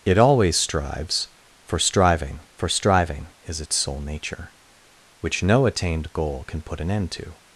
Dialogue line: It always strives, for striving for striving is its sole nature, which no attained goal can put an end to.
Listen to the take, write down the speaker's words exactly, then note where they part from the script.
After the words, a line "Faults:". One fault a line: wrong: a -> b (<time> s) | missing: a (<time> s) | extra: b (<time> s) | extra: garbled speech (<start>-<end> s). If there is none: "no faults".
It always strives, for striving for striving is its sole nature, which no attained goal can put an end to.
Faults:
no faults